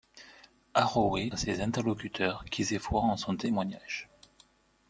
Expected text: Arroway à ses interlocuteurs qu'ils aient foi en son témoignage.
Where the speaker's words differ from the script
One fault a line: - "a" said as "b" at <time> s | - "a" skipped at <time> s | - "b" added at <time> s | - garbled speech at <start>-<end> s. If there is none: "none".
none